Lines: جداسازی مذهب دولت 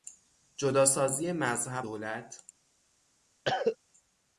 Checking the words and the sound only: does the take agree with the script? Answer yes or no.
no